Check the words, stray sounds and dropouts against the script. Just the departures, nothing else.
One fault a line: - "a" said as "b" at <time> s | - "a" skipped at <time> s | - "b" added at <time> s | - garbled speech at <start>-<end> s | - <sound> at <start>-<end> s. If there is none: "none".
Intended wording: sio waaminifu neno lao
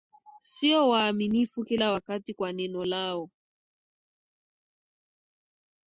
- "kila wakati kwa" added at 1.6 s